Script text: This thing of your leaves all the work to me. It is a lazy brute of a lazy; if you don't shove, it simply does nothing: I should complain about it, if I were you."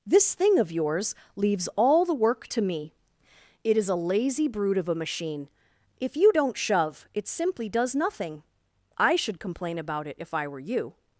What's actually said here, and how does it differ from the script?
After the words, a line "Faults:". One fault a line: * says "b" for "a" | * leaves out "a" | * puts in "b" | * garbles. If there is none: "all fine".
This thing of yours leaves all the work to me. It is a lazy brute of a machine; if you don't shove, it simply does nothing: I should complain about it, if I were you."
Faults:
* says "yours" for "your"
* says "machine" for "lazy"